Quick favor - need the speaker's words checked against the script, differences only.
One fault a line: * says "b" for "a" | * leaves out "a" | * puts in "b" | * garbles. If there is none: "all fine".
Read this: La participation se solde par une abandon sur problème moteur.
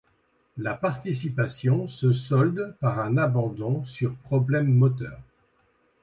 * says "un" for "une"